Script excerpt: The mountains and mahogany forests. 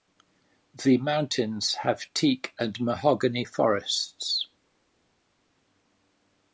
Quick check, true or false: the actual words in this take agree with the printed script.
false